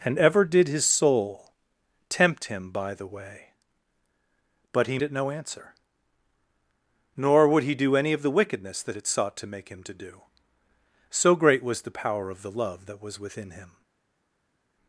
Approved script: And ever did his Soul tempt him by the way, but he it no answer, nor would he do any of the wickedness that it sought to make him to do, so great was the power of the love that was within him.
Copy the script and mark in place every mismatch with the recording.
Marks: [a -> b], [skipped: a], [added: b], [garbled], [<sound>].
And ever did his Soul tempt him by the way, but he it no answer, nor would he do any of the wickedness that it sought to make him to do, so great was the power of the love that was within him.